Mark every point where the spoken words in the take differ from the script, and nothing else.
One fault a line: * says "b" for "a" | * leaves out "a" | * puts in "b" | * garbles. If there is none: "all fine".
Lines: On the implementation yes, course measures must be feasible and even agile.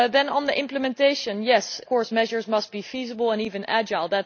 all fine